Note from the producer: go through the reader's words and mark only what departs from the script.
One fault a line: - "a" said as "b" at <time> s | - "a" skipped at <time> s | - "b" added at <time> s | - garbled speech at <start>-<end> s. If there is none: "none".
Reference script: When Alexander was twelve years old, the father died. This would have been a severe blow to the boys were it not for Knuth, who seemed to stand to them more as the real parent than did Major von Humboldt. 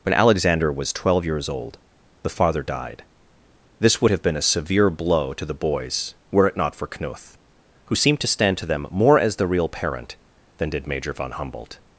none